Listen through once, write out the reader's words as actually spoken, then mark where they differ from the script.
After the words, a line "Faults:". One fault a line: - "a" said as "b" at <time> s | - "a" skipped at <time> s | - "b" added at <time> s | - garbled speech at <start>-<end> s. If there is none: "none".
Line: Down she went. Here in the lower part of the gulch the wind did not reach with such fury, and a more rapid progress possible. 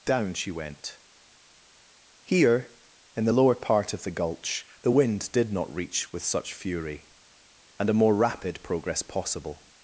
Down she went. Here in the lower part of the gulch the wind did not reach with such fury, and a more rapid progress possible.
Faults:
none